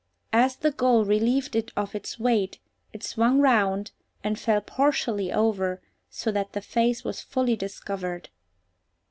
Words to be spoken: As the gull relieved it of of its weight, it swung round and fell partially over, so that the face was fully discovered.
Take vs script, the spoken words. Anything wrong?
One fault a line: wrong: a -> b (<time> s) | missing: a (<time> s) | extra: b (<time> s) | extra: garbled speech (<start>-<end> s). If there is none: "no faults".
missing: of (1.9 s)